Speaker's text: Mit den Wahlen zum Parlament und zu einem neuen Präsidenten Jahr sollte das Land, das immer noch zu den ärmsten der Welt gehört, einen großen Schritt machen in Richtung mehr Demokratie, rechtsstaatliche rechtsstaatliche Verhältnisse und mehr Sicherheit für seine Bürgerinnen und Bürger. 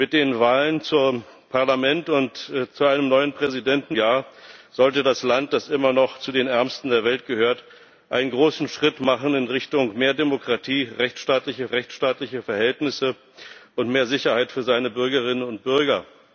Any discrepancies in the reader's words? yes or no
no